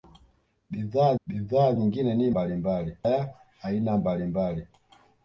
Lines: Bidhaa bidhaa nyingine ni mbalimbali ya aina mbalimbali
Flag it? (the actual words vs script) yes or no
no